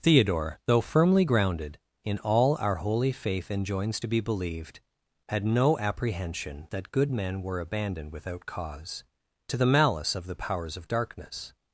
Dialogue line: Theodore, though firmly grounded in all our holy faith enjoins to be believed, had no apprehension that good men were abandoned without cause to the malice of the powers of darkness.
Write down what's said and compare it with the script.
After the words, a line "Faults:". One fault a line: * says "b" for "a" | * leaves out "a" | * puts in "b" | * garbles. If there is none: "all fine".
Theodore, though firmly grounded in all our holy faith enjoins to be believed, had no apprehension that good men were abandoned without cause to the malice of the powers of darkness.
Faults:
all fine